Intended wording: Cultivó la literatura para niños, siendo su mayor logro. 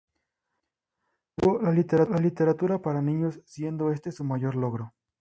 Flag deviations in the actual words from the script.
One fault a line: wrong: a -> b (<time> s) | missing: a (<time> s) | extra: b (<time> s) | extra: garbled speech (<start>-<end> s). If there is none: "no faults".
extra: este (3.9 s)